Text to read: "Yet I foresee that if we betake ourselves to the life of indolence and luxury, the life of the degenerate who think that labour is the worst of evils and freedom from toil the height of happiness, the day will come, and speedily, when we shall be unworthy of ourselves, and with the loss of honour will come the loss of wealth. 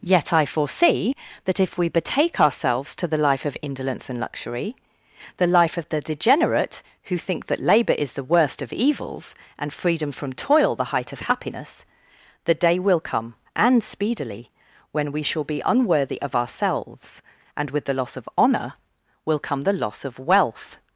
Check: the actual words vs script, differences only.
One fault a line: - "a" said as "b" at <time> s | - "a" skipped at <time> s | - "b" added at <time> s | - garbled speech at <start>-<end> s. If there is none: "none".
none